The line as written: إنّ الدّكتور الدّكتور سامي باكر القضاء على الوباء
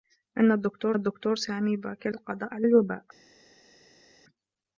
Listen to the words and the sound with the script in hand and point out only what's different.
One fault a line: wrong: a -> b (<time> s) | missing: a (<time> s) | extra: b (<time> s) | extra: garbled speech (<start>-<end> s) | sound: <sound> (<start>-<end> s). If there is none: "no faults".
no faults